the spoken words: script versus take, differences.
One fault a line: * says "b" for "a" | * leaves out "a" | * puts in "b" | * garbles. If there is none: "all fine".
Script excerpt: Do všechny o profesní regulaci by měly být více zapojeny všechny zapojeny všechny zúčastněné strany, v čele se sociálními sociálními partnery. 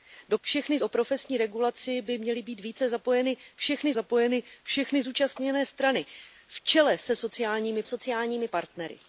all fine